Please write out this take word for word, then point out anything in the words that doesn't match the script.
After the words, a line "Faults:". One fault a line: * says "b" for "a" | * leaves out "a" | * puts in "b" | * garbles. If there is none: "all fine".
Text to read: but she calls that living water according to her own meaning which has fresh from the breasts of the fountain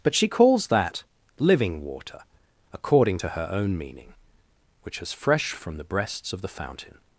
but she calls that living water according to her own meaning which has fresh from the breasts of the fountain
Faults:
all fine